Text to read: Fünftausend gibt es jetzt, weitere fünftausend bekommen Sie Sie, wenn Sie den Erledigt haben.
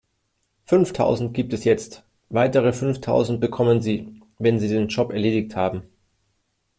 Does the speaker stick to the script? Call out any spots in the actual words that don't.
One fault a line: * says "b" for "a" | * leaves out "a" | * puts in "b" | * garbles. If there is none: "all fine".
* leaves out "Sie"
* puts in "Job"